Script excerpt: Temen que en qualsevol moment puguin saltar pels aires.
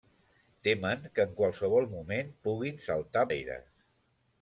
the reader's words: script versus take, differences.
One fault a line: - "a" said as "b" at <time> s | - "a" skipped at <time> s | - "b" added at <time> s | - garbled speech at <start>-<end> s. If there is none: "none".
- "pels" skipped at 3.3 s